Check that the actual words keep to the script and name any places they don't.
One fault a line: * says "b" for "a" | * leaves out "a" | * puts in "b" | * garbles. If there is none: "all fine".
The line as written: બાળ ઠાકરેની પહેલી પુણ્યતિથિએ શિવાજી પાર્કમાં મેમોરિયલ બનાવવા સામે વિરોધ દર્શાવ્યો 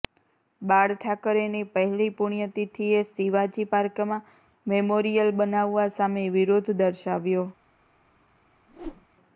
all fine